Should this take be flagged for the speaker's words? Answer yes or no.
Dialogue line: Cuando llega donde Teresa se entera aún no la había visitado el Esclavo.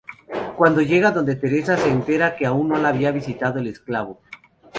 yes